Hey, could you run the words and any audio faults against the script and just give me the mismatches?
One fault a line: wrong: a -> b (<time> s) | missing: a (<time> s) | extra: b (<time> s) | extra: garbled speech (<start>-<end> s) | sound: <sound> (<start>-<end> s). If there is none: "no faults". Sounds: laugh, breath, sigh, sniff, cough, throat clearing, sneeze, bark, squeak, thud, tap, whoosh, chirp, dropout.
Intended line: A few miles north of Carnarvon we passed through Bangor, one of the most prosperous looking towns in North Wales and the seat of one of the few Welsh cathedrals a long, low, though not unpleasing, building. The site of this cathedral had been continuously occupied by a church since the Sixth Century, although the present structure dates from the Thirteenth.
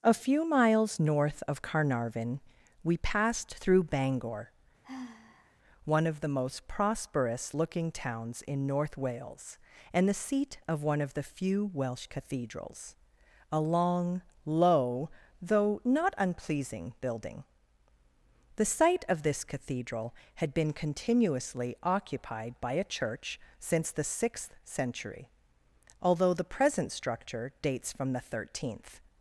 sound: sigh (4.8-5.6 s)